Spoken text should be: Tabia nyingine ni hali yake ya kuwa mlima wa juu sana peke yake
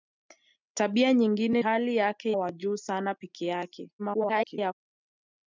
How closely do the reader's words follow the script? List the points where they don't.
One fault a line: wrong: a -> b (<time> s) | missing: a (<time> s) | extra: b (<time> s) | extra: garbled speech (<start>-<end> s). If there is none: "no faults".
missing: ni (1.6 s)
missing: ya kuwa mlima (2.3 s)
extra: garbled speech (4.0-4.7 s)